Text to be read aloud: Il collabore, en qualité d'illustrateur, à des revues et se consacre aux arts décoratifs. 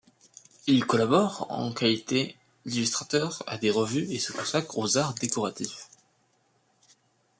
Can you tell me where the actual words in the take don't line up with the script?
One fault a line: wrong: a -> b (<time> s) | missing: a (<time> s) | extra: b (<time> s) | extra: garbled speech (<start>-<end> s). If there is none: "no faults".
no faults